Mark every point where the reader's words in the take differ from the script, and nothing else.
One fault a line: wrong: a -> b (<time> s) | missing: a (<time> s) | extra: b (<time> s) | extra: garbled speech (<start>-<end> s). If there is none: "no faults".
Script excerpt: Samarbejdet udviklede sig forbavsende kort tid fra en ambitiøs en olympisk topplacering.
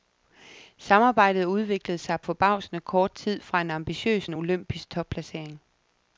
no faults